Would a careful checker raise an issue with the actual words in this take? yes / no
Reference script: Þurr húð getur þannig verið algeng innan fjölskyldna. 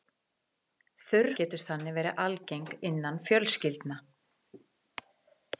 yes